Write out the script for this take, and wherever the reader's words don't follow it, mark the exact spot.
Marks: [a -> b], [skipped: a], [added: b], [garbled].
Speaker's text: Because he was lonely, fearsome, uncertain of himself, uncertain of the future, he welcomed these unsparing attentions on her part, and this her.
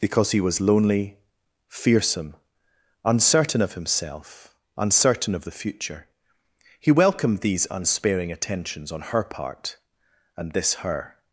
Because he was lonely, fearsome, uncertain of himself, uncertain of the future, he welcomed these unsparing attentions on her part, and this her.